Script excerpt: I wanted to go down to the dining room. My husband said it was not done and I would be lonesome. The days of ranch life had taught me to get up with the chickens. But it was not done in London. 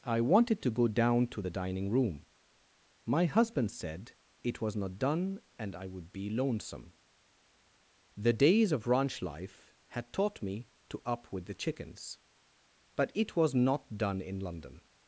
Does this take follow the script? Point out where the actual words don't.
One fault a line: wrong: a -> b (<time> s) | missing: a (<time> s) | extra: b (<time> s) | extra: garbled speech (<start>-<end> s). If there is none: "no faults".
missing: get (11.0 s)